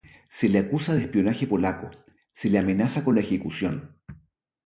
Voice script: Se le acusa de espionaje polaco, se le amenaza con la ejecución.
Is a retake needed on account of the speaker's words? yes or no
no